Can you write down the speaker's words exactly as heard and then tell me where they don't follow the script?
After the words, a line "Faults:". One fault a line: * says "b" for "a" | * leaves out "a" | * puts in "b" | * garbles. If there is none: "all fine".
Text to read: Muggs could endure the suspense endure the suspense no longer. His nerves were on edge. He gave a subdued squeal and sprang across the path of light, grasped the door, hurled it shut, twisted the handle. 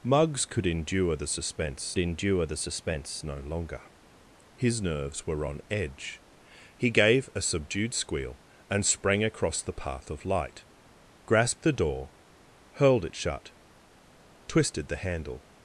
Muggs could endure the suspense endure the suspense no longer. His nerves were on edge. He gave a subdued squeal and sprang across the path of light, grasped the door, hurled it shut, twisted the handle.
Faults:
all fine